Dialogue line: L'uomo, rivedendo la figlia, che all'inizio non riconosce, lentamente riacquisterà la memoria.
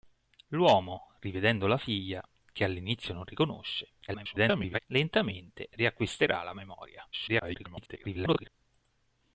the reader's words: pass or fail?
fail